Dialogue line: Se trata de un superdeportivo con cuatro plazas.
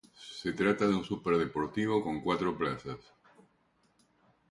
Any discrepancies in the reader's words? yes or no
no